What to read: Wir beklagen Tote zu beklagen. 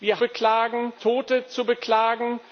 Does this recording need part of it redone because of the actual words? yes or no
no